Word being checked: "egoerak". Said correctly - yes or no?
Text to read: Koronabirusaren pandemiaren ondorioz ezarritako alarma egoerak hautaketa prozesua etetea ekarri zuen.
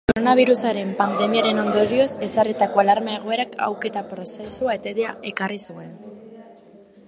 yes